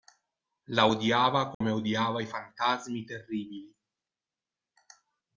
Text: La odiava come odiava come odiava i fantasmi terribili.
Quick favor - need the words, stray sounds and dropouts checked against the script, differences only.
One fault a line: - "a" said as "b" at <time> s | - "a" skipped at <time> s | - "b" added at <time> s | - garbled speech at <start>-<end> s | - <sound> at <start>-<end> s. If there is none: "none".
- dropout at 1.5-1.6 s
- "come odiava" skipped at 2.2 s